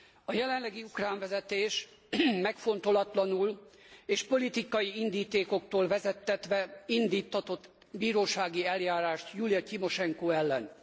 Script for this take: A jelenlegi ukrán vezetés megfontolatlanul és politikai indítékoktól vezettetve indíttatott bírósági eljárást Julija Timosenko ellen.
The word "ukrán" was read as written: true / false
true